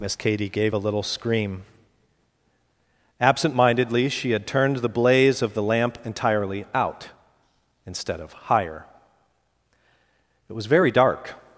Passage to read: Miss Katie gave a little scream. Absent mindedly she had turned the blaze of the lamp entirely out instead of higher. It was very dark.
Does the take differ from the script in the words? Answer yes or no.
no